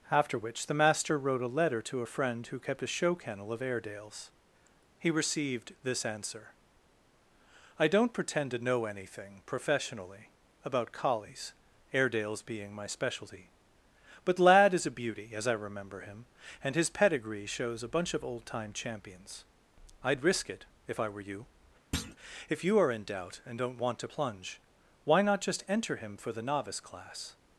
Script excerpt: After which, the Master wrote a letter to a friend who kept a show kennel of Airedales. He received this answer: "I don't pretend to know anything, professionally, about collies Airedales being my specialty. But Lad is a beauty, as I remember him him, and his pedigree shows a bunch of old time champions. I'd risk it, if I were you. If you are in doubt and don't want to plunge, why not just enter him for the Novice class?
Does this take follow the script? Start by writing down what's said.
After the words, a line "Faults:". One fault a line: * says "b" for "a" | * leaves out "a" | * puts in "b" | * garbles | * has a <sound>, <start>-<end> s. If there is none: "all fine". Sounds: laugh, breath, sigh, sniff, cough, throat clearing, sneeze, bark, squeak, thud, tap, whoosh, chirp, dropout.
After which, the Master wrote a letter to a friend who kept a show kennel of Airedales. He received this answer: "I don't pretend to know anything, professionally, about collies Airedales being my specialty. But Lad is a beauty, as I remember him, and his pedigree shows a bunch of old time champions. I'd risk it, if I were you. If you are in doubt and don't want to plunge, why not just enter him for the Novice class?
Faults:
* leaves out "him"
* has a thud, 21.9-22.2 s